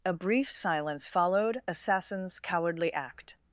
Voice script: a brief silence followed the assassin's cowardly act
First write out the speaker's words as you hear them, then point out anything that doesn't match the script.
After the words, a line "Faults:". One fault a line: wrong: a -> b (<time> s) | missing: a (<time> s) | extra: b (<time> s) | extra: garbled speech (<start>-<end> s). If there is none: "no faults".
a brief silence followed assassin's cowardly act
Faults:
missing: the (1.6 s)